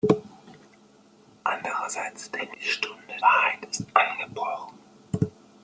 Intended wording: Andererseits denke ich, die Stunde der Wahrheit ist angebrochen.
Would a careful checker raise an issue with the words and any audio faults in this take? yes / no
yes